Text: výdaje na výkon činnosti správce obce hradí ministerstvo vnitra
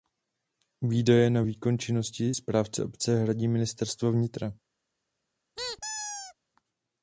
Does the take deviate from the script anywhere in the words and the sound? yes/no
yes